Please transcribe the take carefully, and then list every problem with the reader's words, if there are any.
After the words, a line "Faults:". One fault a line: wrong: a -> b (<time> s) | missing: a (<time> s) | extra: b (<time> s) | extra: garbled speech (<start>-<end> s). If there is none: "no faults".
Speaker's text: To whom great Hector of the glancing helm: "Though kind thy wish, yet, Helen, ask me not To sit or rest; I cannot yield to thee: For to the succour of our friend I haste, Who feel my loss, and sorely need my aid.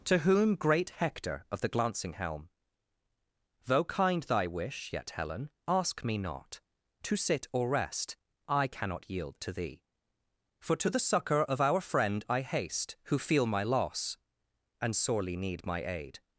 To whom great Hector of the glancing helm: "Though kind thy wish, yet, Helen, ask me not To sit or rest; I cannot yield to thee: For to the succour of our friend I haste, Who feel my loss, and sorely need my aid.
Faults:
no faults